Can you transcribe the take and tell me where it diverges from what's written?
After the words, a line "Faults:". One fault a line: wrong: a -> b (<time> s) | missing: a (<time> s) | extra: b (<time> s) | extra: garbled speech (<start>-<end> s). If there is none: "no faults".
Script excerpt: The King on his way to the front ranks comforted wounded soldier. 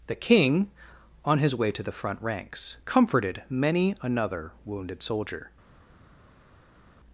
The King on his way to the front ranks comforted many another wounded soldier.
Faults:
extra: many another (3.5 s)